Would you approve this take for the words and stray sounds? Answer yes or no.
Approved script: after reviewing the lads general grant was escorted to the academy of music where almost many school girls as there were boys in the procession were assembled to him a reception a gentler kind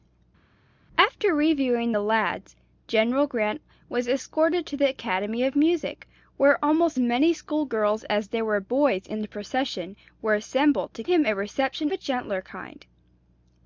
yes